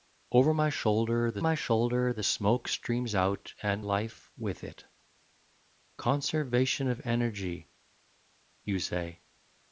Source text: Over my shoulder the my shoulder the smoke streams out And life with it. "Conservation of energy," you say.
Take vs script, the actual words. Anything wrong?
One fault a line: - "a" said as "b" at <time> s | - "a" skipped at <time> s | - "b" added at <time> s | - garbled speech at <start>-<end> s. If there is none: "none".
none